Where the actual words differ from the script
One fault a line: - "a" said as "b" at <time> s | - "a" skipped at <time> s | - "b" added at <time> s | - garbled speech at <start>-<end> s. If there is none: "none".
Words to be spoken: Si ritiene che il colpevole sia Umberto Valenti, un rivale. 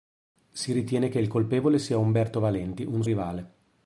none